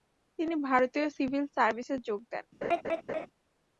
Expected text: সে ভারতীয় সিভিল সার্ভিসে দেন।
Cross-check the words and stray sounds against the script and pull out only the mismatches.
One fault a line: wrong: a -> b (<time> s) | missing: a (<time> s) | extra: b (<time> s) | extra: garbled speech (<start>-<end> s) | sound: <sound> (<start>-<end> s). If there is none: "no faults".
wrong: সে -> তিনি (0.4 s)
extra: যোগ (2.1 s)
sound: laugh (2.6-3.3 s)